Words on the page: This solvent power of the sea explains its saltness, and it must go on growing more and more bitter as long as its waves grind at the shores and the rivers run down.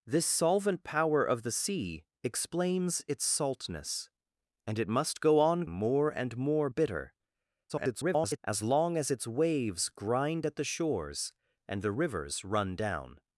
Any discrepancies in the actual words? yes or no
yes